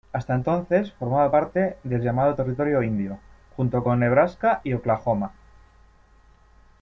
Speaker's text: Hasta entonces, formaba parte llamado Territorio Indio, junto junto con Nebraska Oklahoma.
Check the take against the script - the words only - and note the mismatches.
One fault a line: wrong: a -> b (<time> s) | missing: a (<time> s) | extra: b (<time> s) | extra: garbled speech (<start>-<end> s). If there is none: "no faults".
extra: del (1.8 s)
missing: junto (3.8 s)
extra: y (4.6 s)